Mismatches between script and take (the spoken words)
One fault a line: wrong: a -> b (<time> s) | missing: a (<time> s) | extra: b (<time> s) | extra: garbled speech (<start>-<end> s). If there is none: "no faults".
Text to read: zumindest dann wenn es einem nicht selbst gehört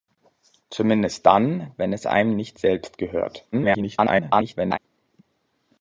extra: garbled speech (3.5-4.8 s)